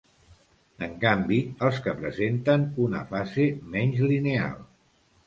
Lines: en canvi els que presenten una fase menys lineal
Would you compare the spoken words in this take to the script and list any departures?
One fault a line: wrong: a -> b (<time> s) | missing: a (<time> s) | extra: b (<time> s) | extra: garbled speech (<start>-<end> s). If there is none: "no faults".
no faults